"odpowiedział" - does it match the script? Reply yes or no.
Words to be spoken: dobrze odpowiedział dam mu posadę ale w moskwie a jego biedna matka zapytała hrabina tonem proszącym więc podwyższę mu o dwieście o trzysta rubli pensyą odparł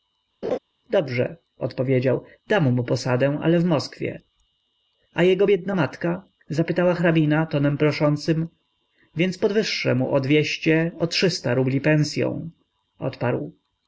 yes